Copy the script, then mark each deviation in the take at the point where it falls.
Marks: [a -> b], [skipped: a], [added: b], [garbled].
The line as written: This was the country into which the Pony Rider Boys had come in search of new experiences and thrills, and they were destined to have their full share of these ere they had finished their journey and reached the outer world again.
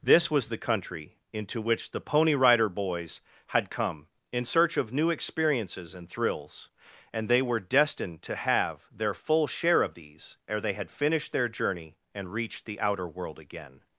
This was the country into which the Pony Rider Boys had come in search of new experiences and thrills, and they were destined to have their full share of these ere they had finished their journey and reached the outer world again.